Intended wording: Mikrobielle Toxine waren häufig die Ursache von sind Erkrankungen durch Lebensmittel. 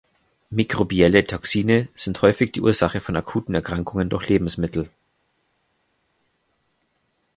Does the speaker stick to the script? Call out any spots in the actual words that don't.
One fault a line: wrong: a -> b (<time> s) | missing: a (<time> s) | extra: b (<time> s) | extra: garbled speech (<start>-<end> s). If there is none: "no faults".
wrong: waren -> sind (1.9 s)
wrong: sind -> akuten (3.2 s)